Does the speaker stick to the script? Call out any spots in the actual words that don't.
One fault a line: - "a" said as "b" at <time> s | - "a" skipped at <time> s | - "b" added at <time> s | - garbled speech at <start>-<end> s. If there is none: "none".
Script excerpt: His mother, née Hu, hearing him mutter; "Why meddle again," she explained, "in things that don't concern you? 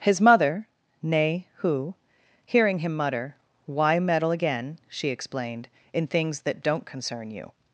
none